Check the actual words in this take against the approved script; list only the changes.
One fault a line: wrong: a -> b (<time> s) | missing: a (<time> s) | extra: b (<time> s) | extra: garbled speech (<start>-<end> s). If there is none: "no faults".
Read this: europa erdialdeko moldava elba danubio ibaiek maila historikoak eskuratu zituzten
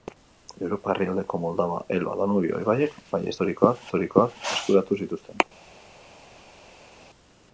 extra: historikoak (3.9 s)